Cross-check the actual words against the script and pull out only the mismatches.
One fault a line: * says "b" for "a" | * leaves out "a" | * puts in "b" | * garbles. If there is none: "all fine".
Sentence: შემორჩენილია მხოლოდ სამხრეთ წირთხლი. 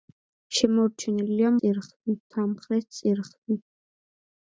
* says "წირთხლი" for "მხოლოდ"